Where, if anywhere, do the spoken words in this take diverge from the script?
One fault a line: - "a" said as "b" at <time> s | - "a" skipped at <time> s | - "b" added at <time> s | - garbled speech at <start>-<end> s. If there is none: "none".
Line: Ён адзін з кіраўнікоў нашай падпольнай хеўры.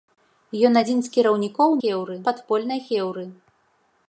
- "нашай" said as "хеўры" at 1.8 s